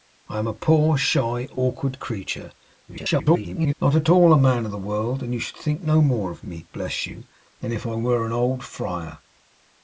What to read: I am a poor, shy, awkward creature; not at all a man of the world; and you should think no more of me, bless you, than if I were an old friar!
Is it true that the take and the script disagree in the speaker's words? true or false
true